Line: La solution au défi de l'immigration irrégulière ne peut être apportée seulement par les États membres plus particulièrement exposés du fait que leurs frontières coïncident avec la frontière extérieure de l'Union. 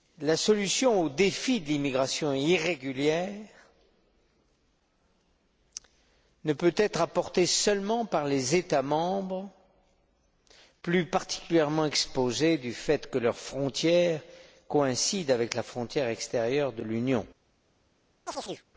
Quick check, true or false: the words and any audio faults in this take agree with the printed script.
false